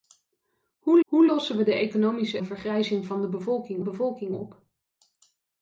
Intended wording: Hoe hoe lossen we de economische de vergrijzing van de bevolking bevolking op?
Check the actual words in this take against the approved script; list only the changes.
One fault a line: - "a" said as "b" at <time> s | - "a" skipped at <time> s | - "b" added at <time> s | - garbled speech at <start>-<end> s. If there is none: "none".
none